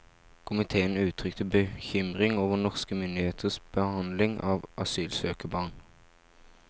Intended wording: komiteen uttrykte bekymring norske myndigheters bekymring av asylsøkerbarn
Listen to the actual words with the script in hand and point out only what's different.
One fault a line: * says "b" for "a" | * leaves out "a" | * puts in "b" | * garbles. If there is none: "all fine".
* puts in "over"
* says "behandling" for "bekymring"